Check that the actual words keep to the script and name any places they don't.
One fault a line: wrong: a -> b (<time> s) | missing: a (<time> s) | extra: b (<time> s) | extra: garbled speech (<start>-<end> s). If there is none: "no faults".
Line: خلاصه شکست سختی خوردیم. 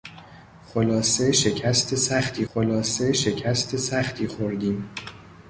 extra: خلاصه شکست سختی (2.5 s)